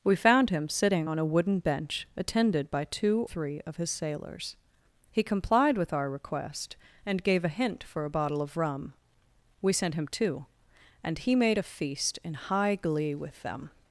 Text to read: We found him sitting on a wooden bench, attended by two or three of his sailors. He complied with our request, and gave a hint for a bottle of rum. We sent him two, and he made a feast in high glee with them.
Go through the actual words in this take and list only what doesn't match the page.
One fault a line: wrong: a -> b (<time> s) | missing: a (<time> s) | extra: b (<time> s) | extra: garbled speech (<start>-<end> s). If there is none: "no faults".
missing: or (3.3 s)